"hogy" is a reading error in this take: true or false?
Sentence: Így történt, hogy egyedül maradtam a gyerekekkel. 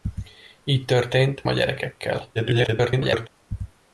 true